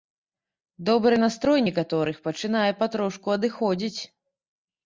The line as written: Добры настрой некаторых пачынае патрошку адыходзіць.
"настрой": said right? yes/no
yes